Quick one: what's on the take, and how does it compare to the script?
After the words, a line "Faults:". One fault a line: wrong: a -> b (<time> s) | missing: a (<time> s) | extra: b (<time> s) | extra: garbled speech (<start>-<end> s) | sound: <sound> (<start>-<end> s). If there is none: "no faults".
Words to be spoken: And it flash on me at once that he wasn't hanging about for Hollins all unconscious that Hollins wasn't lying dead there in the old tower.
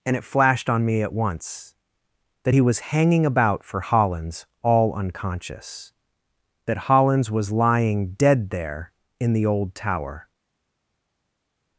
And it flashed on me at once that he was hanging about for Hollins all unconscious that Hollins was lying dead there in the old tower.
Faults:
wrong: flash -> flashed (0.2 s)
wrong: wasn't -> was (2.6 s)
wrong: wasn't -> was (7.3 s)